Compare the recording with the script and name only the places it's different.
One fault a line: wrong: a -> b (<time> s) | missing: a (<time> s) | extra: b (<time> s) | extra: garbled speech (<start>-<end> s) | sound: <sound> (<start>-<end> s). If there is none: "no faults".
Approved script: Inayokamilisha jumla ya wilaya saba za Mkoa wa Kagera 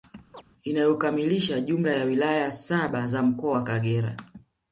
sound: chirp (0.3-0.4 s)